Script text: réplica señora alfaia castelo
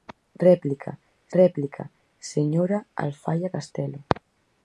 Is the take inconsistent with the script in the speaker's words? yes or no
yes